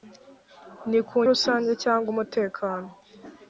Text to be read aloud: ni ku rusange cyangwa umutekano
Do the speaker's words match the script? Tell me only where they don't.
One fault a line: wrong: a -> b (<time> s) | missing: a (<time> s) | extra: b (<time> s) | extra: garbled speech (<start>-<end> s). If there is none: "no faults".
no faults